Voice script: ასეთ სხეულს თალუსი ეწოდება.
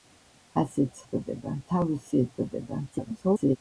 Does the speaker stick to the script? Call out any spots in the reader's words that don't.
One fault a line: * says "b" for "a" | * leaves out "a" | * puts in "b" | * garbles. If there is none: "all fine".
* says "ეწოდება" for "სხეულს"
* garbles